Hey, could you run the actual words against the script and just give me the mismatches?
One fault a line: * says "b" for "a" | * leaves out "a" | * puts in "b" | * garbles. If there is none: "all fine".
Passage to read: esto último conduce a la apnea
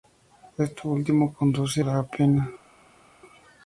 * leaves out "a"